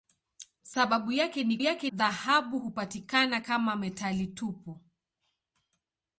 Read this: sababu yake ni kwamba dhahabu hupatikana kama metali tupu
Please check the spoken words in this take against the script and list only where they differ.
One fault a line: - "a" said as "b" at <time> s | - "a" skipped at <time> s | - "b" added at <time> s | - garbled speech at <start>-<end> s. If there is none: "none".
- "kwamba" said as "yake" at 1.6 s